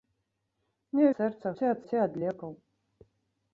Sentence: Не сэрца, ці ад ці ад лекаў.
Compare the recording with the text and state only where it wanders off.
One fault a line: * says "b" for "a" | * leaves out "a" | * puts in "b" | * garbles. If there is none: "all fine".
all fine